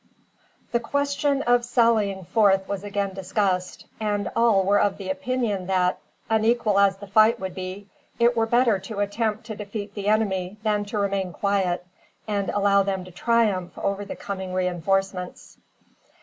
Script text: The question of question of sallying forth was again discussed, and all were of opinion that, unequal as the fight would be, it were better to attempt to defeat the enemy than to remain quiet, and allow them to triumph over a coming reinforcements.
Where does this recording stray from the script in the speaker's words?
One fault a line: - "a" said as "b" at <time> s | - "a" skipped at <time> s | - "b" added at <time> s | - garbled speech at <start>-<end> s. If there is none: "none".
- "question of" skipped at 1.6 s
- "a" said as "the" at 14.0 s